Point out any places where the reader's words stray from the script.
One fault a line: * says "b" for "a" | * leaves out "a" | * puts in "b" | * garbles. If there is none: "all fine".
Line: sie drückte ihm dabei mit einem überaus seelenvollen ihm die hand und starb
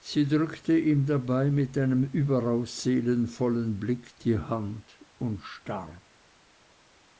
* says "blick" for "ihm"